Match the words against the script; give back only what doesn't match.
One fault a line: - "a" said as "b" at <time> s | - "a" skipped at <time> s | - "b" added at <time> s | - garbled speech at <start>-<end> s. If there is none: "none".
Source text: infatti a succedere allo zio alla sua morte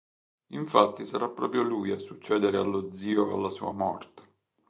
- "sarà proprio lui" added at 1.1 s